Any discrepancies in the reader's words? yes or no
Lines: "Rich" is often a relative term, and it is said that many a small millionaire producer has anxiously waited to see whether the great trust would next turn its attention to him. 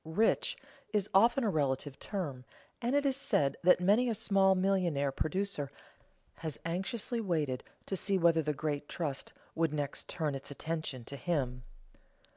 no